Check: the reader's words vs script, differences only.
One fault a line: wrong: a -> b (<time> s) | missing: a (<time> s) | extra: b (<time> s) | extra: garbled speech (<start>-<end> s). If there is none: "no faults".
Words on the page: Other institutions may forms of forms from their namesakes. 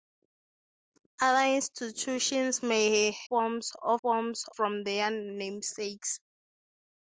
no faults